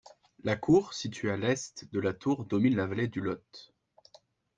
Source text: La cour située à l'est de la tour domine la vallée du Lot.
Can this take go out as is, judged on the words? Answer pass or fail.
pass